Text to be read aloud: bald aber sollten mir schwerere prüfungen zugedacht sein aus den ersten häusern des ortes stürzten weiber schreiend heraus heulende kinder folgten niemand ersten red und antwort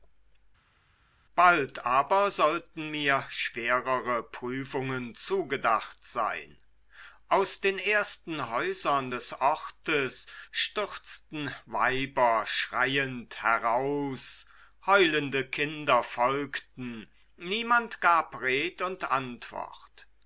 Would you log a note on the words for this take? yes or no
yes